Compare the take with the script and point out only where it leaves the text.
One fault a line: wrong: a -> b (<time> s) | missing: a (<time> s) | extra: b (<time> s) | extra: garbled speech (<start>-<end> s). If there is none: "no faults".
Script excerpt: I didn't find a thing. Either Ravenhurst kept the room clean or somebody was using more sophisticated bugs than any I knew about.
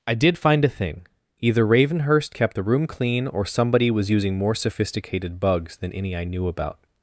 wrong: didn't -> did (0.1 s)